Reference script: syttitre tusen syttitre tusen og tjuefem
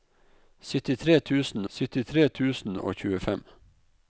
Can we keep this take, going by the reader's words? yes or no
yes